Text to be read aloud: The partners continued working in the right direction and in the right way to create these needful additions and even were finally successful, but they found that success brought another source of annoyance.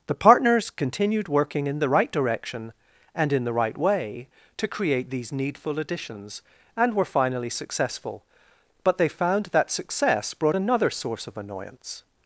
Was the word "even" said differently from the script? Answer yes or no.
yes